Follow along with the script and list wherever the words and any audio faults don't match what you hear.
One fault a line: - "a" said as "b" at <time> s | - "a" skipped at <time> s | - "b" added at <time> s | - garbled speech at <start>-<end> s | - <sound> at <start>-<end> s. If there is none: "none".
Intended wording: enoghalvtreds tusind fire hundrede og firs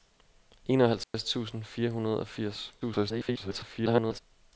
- dropout at 1.0-1.1 s
- garbled speech at 2.8-4.2 s